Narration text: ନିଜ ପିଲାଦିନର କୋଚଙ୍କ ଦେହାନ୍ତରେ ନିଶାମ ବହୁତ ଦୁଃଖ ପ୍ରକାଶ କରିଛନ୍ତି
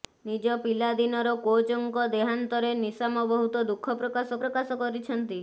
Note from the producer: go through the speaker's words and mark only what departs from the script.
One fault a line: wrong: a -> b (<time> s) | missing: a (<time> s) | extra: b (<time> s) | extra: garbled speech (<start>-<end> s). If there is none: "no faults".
extra: ପ୍ରକାଶ (4.4 s)